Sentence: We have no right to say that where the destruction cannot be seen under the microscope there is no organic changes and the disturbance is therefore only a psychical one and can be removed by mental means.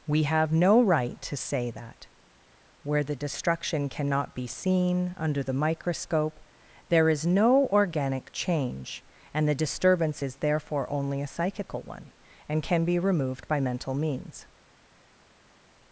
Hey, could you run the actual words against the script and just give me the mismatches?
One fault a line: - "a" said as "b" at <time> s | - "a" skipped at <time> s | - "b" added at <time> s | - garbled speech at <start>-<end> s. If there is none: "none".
- "changes" said as "change" at 8.3 s